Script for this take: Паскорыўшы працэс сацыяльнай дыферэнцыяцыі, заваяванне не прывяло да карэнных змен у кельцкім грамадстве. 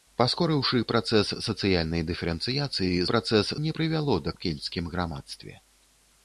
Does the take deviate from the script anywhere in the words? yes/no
yes